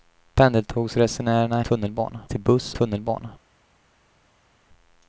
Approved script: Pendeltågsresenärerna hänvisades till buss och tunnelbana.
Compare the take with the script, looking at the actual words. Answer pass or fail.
fail